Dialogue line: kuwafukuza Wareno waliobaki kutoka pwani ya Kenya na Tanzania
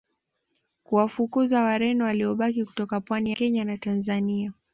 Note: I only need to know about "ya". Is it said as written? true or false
false